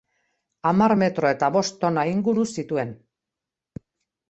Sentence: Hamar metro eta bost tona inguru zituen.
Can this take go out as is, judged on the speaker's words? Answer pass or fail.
pass